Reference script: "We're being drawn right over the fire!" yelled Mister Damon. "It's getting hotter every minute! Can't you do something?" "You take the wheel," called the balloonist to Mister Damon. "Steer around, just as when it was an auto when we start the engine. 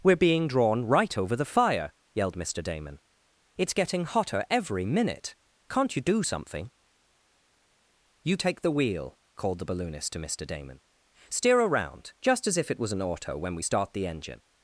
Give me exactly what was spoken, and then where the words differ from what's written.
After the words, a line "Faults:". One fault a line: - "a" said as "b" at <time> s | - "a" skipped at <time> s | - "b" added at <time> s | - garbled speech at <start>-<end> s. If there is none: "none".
"We're being drawn right over the fire!" yelled Mister Damon. "It's getting hotter every minute! Can't you do something?" "You take the wheel," called the balloonist to Mister Damon. "Steer around, just as if it was an auto when we start the engine.
Faults:
- "when" said as "if" at 12.6 s